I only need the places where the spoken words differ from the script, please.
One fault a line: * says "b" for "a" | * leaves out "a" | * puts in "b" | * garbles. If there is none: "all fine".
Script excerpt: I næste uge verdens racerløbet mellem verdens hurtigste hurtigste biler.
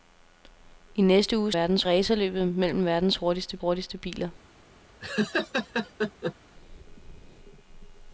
all fine